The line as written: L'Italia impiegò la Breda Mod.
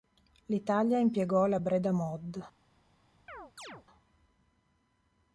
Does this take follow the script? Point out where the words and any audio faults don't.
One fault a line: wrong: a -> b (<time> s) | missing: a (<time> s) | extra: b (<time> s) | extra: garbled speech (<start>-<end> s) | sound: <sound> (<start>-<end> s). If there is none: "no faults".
sound: chirp (3.3-3.9 s)